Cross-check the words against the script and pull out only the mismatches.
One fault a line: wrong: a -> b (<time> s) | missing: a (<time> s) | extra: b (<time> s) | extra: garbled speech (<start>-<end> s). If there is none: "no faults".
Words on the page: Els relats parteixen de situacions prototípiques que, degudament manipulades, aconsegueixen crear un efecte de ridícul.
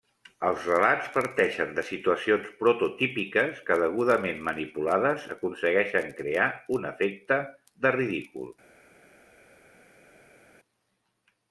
no faults